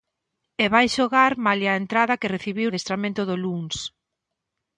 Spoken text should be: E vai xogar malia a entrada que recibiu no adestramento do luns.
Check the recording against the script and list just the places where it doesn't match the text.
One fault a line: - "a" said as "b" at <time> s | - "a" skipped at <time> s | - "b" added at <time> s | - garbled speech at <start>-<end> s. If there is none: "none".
- "no" skipped at 2.7 s